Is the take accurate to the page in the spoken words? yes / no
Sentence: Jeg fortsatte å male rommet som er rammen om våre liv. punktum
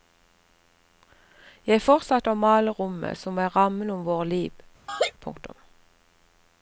yes